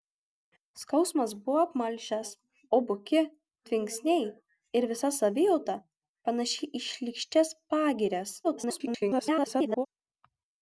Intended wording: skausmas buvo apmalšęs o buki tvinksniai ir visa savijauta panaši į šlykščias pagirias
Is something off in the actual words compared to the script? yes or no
yes